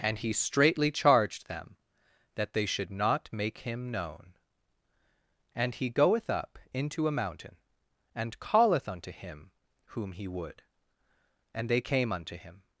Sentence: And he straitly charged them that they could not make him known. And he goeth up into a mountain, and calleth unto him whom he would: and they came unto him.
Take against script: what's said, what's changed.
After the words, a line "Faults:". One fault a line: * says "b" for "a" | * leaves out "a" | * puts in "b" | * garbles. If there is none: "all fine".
And he straitly charged them that they should not make him known. And he goeth up into a mountain, and calleth unto him whom he would: and they came unto him.
Faults:
* says "should" for "could"